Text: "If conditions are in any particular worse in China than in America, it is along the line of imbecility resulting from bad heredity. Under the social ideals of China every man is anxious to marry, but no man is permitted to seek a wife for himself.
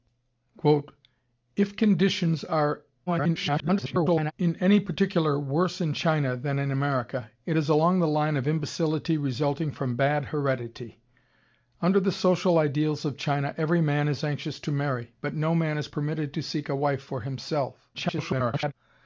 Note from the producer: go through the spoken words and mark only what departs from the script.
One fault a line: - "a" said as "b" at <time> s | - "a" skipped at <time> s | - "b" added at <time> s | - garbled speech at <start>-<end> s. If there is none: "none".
- garbled speech at 3.1-4.3 s
- garbled speech at 17.9-18.7 s